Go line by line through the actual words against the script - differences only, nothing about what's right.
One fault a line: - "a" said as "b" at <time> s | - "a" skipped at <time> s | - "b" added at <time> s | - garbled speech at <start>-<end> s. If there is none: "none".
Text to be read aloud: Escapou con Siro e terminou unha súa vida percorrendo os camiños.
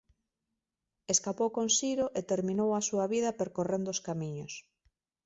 - "unha" said as "a" at 2.7 s